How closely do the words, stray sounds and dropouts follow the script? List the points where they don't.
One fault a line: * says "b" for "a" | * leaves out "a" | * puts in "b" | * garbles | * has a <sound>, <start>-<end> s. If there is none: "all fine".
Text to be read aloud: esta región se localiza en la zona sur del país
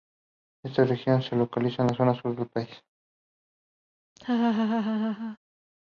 * has a laugh, 4.2-5.4 s